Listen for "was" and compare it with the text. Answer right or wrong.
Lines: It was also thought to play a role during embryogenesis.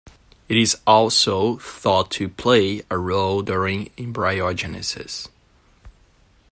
wrong